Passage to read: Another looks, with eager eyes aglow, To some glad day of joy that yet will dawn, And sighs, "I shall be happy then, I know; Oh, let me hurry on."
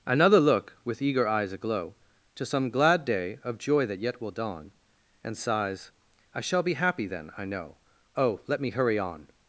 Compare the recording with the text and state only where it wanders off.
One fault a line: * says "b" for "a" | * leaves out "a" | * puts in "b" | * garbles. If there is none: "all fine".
* says "look" for "looks"